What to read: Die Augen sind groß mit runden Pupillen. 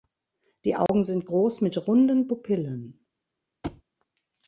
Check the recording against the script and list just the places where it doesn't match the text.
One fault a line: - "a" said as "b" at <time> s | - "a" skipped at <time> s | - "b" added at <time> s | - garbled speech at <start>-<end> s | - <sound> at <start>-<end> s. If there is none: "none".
- dropout at 0.9-0.9 s
- thud at 3.6-3.8 s